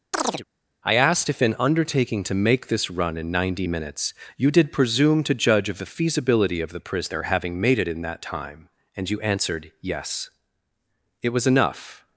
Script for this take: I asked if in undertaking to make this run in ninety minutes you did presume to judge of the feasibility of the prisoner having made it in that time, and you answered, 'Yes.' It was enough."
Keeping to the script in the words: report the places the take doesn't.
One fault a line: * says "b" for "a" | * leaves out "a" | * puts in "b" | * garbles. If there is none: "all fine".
all fine